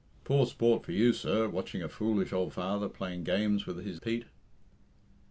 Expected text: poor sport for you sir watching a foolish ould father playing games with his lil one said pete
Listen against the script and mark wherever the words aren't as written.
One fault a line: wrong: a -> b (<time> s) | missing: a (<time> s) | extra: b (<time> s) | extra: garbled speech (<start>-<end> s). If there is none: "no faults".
missing: lil one said (4.0 s)